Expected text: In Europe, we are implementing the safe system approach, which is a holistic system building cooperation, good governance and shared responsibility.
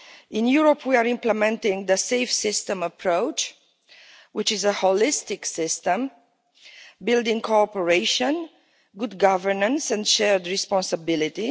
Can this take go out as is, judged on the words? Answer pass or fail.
pass